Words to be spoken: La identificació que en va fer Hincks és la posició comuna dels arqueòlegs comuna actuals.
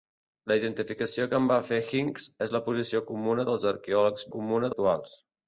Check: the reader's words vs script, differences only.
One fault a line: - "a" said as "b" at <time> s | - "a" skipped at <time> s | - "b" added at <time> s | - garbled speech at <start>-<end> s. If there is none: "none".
none